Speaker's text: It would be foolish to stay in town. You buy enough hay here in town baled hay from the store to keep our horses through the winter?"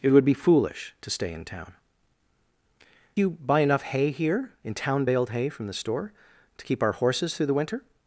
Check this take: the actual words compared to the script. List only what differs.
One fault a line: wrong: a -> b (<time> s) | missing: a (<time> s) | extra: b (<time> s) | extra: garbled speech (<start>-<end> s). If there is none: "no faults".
no faults